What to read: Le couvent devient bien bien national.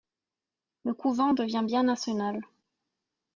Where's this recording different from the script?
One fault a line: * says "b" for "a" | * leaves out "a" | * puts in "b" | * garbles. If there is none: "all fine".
* leaves out "bien"